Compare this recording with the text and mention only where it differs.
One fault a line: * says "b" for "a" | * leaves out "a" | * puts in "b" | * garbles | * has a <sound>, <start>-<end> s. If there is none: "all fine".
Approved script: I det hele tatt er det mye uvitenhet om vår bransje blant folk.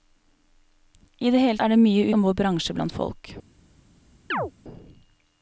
* leaves out "tatt"
* leaves out "uvitenhet"
* has a chirp, 4.3-4.5 s